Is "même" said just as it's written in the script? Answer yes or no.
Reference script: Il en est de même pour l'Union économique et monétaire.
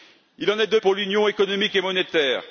no